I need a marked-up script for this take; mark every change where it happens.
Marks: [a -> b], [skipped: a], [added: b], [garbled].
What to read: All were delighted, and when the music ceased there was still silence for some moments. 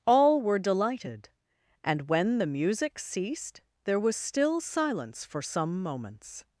All were delighted, and when the music ceased there was still silence for some moments.